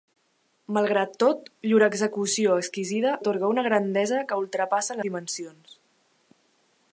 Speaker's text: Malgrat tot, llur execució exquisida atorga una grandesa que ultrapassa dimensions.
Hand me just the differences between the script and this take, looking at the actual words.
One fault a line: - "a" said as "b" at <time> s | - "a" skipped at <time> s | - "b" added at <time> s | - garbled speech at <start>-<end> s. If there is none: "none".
none